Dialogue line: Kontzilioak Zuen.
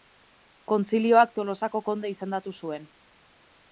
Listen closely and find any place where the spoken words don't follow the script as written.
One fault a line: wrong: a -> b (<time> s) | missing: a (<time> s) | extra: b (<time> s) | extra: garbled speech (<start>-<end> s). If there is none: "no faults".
extra: Tolosako konde izendatu (1.4 s)